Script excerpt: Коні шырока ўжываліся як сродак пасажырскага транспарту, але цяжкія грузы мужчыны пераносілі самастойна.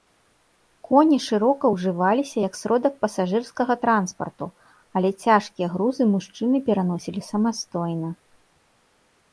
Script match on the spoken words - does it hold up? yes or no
yes